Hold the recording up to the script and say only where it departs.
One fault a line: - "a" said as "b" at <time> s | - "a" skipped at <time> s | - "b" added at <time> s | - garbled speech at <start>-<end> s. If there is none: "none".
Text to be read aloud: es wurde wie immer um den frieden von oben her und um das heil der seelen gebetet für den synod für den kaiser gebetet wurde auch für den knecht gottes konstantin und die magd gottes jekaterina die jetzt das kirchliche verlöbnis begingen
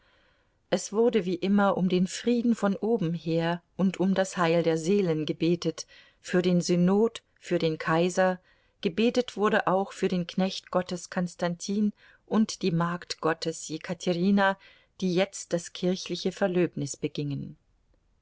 none